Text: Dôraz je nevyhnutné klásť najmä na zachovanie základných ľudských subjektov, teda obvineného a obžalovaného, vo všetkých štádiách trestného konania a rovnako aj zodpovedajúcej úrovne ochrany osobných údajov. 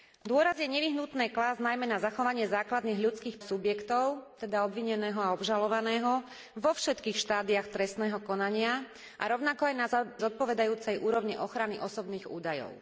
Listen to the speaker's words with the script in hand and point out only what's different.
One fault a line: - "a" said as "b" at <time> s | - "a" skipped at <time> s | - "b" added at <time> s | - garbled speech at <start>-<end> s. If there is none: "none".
none